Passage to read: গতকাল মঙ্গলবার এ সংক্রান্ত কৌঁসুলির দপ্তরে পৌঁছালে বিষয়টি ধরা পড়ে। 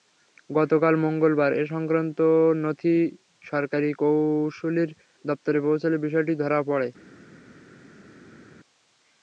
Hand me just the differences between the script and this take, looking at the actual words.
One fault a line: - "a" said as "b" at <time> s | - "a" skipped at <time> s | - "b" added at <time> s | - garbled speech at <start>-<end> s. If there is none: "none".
- "নথি সরকারি" added at 2.6 s